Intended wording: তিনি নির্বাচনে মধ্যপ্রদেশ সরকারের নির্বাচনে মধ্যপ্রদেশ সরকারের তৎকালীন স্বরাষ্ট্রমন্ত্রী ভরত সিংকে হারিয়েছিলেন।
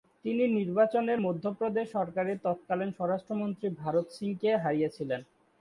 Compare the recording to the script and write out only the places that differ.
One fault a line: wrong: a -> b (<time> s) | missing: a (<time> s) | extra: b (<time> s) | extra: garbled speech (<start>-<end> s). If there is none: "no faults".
missing: নির্বাচনে মধ্যপ্রদেশ সরকারের (2.4 s)